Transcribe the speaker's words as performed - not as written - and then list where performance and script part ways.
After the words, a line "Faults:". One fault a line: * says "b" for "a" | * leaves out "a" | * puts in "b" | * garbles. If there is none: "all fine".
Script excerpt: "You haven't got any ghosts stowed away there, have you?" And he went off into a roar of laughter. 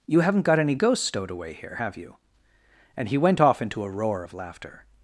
"You haven't got any ghosts stowed away here, have you?" And he went off into a roar of laughter.
Faults:
* says "here" for "there"